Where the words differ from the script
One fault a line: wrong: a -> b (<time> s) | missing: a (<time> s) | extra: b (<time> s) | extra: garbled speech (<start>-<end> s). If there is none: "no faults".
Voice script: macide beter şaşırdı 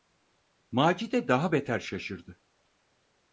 extra: daha (1.3 s)